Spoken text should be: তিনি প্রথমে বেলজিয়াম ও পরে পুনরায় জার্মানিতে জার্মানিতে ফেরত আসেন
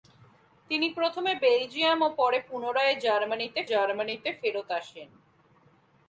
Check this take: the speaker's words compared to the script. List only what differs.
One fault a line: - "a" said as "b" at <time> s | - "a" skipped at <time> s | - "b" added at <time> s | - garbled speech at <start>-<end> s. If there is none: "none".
none